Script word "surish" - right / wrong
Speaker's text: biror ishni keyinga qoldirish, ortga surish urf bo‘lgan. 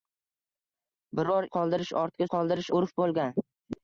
wrong